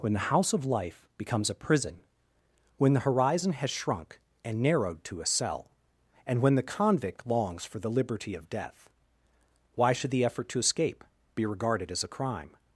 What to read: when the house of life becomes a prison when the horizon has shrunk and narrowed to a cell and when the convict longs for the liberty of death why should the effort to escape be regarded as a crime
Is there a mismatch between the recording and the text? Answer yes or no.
no